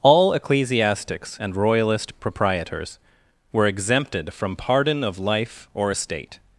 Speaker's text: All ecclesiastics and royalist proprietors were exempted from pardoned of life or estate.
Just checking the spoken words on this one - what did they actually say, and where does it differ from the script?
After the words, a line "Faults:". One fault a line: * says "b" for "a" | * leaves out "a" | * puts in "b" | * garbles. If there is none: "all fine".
All ecclesiastics and royalist proprietors were exempted from pardon of life or estate.
Faults:
* says "pardon" for "pardoned"